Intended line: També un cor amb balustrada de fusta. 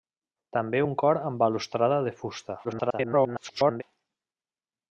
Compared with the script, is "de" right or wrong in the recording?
right